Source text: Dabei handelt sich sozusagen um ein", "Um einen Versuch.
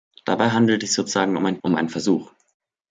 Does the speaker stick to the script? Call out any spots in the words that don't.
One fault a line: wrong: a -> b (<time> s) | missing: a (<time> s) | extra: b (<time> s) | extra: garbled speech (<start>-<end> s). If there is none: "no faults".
no faults